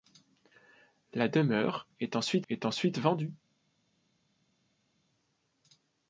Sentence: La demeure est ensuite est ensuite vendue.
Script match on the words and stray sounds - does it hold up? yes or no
yes